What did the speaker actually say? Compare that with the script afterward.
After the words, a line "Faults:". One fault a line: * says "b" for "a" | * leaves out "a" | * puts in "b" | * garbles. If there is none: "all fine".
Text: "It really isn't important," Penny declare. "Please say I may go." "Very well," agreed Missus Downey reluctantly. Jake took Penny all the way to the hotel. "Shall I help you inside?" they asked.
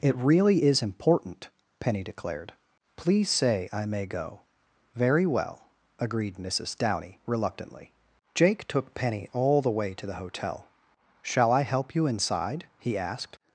"It really is important," Penny declared. "Please say I may go." "Very well," agreed Missus Downey reluctantly. Jake took Penny all the way to the hotel. "Shall I help you inside?" he asked.
Faults:
* says "is" for "isn't"
* says "declared" for "declare"
* says "he" for "they"